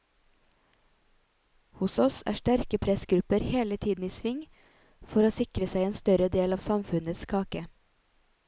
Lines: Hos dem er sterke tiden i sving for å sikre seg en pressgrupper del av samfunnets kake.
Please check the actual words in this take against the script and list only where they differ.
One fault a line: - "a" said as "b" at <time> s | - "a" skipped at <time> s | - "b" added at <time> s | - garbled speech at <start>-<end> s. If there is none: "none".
- "dem" said as "oss" at 2.0 s
- "pressgrupper hele" added at 2.9 s
- "pressgrupper" said as "større" at 6.0 s